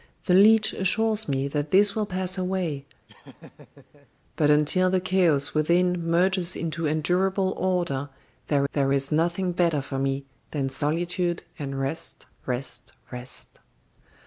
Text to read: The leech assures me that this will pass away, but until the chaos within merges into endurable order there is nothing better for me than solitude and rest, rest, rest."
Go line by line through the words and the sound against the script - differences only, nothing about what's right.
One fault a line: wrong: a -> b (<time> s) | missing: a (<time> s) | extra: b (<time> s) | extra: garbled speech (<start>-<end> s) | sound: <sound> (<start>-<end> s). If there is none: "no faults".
sound: laugh (3.1-4.1 s)
extra: there (8.7 s)